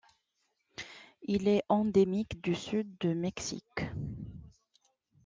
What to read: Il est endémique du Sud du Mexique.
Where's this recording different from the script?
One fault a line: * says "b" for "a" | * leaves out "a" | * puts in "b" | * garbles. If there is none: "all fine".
all fine